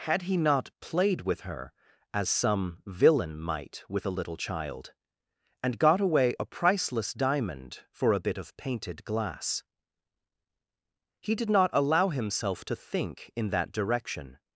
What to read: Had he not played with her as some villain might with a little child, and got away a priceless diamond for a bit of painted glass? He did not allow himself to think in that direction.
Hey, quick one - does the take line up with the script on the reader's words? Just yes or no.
yes